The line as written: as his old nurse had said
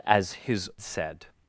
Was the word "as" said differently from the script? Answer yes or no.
no